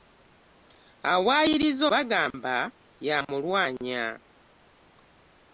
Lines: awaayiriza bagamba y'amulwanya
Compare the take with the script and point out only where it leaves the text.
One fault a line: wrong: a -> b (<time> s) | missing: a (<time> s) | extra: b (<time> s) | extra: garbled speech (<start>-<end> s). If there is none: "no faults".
no faults